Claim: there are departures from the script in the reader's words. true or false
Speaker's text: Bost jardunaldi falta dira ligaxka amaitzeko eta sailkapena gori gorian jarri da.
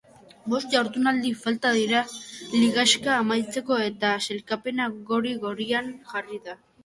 false